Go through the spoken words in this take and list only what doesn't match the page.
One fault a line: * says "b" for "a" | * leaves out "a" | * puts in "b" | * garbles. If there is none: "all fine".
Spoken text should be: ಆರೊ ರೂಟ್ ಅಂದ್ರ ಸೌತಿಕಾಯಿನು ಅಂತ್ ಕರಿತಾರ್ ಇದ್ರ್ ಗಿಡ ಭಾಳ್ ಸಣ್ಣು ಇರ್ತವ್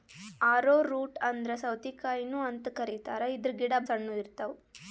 * leaves out "ಭಾಳ್"